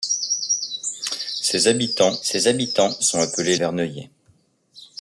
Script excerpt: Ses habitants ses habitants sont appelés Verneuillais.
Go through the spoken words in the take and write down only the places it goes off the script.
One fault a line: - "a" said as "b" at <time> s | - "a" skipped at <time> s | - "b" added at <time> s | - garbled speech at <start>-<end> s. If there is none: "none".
none